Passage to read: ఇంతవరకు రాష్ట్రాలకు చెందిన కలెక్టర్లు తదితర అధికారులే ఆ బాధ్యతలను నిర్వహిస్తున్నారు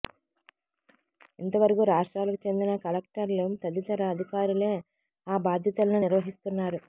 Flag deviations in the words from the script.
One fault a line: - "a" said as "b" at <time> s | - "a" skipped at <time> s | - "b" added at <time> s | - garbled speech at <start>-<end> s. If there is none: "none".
none